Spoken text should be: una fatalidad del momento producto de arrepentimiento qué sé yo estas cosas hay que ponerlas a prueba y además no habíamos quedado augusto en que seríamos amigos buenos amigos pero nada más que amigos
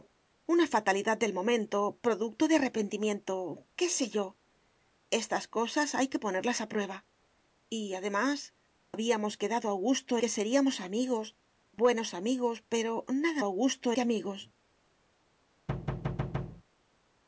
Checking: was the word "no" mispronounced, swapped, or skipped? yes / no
yes